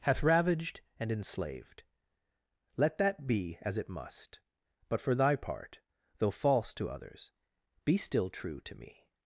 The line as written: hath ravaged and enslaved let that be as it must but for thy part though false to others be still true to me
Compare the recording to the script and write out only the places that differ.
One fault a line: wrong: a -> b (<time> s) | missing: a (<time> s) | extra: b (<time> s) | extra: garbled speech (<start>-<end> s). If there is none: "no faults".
no faults